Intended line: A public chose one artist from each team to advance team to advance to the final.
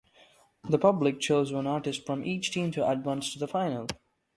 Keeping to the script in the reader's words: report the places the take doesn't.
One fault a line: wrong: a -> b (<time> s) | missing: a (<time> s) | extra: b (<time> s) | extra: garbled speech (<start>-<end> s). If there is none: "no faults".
wrong: A -> The (0.6 s)
missing: team to advance (3.3 s)